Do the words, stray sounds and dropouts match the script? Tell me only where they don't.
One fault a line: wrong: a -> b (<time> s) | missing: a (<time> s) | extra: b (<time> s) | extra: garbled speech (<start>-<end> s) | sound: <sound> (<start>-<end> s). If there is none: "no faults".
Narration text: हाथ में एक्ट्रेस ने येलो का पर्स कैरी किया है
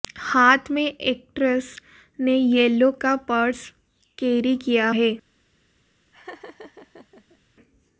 sound: laugh (6.1-7.4 s)